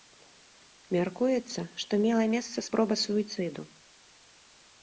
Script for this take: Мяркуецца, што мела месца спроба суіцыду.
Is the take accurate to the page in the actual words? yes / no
yes